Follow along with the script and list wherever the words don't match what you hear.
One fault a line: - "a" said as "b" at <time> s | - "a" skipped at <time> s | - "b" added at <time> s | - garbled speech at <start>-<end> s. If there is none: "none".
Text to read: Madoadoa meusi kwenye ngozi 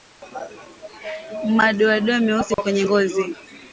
none